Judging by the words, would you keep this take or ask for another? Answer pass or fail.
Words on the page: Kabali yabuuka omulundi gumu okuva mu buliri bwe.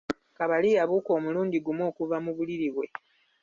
pass